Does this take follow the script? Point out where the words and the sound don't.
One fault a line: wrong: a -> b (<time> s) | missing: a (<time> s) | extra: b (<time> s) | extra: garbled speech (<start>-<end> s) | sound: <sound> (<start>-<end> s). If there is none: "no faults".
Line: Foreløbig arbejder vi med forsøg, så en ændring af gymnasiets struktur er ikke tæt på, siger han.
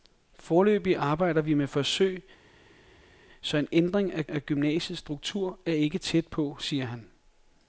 extra: af (4.3 s)